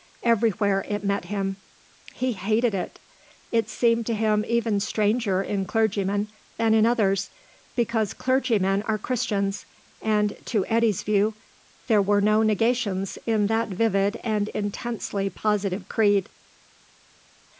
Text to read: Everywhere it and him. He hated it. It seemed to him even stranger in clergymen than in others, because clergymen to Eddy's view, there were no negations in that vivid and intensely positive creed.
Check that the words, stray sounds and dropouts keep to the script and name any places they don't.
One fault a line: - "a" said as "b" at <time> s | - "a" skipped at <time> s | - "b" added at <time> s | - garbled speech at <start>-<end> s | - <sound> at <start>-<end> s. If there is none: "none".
- "and" said as "met" at 1.0 s
- "are Christians and" added at 8.8 s